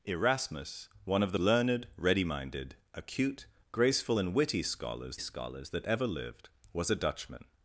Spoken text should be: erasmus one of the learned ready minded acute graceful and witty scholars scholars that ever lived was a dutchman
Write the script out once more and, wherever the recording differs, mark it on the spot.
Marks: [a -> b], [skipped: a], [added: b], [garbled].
erasmus one of the learned ready minded acute graceful and witty scholars scholars that ever lived was a dutchman